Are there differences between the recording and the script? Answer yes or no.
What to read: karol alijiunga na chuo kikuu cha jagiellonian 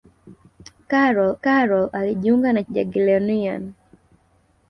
yes